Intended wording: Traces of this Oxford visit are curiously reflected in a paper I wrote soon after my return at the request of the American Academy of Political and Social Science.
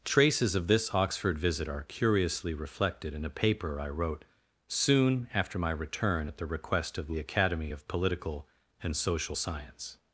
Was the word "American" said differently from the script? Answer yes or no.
yes